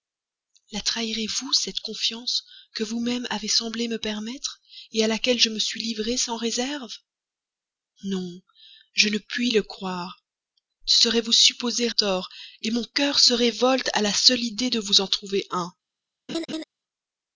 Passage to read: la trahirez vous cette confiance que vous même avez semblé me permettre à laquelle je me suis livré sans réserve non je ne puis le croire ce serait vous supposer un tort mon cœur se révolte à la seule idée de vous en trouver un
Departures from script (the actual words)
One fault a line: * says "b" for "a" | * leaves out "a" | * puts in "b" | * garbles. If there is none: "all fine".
* leaves out "un"